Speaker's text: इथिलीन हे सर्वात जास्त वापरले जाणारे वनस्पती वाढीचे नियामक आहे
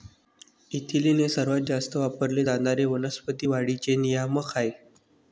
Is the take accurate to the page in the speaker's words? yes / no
yes